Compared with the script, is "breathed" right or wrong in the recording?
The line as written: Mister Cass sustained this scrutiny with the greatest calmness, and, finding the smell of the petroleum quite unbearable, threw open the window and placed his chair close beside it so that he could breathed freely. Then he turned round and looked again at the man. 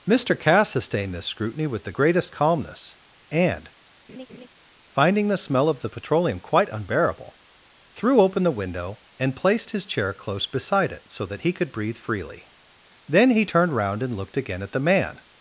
wrong